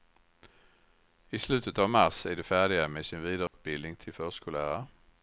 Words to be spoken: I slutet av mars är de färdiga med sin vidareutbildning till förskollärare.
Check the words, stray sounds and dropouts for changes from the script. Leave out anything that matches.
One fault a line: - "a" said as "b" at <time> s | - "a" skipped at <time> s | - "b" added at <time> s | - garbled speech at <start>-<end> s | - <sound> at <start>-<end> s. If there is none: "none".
- dropout at 3.5-3.5 s